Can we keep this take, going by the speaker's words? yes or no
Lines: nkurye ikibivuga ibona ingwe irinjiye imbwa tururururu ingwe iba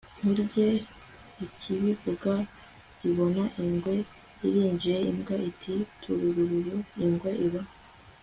no